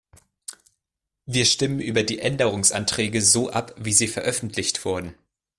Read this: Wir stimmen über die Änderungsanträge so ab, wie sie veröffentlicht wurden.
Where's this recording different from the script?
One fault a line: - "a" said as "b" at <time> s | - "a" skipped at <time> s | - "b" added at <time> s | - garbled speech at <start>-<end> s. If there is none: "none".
none